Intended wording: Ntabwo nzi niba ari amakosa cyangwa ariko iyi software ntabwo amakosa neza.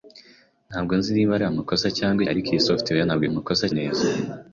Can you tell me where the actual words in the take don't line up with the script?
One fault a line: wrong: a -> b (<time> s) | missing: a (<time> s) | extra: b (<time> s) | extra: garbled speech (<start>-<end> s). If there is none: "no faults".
no faults